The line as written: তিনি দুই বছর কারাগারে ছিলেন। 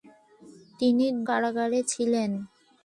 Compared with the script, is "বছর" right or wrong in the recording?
wrong